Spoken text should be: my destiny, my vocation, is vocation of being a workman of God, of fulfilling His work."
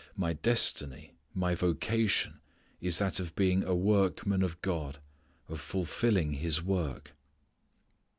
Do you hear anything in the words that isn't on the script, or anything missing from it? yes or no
yes